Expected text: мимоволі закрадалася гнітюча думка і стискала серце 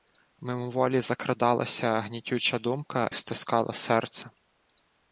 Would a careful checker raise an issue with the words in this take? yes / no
yes